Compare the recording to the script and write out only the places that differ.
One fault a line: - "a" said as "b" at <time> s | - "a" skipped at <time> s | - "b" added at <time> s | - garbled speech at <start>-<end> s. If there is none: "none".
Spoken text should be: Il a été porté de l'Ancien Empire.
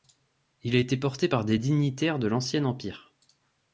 - "par des dignitaires" added at 1.3 s